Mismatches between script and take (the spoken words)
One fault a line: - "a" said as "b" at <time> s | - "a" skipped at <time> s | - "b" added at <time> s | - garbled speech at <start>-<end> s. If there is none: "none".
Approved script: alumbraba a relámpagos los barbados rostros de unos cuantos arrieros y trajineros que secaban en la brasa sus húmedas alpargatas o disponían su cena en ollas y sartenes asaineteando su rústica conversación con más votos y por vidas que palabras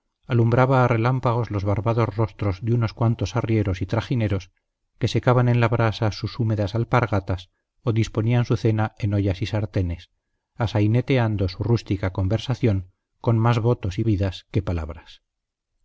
- "por" skipped at 14.0 s